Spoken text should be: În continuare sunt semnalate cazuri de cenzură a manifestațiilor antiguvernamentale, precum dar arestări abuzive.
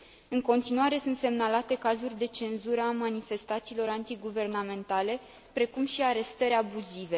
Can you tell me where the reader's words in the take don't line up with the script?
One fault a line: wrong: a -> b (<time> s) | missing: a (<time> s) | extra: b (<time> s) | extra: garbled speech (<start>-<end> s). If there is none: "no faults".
wrong: dar -> și (5.9 s)